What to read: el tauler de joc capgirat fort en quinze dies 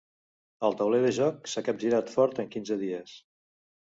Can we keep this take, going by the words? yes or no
no